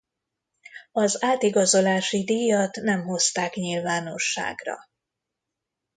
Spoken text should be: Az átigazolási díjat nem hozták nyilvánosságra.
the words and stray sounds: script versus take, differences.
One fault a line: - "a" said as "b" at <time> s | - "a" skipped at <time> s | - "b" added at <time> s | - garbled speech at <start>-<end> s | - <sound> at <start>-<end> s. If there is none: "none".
none